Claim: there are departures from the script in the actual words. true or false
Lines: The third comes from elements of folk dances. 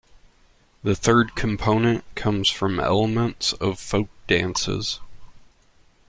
true